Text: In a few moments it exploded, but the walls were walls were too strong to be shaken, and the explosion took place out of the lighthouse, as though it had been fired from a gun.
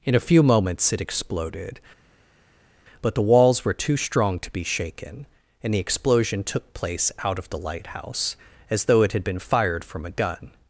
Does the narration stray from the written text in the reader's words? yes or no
yes